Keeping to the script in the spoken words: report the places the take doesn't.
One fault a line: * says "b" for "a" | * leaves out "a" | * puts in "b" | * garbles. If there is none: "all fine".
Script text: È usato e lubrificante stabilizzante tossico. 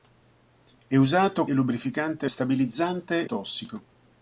all fine